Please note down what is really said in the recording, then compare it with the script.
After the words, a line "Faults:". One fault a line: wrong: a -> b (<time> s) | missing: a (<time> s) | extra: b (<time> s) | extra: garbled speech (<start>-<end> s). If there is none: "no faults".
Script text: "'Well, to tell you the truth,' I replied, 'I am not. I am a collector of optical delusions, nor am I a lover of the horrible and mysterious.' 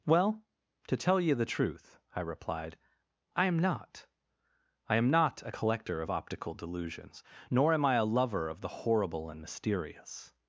"'Well, to tell you the truth,' I replied, 'I am not. I am not a collector of optical delusions, nor am I a lover of the horrible and mysterious.'
Faults:
extra: not (5.1 s)